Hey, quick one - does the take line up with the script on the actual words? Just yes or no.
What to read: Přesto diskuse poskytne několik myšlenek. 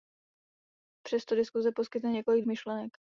yes